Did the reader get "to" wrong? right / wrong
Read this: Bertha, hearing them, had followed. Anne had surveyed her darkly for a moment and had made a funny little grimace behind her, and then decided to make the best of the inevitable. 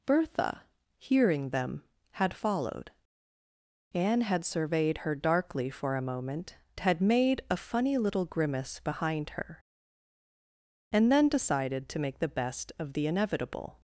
right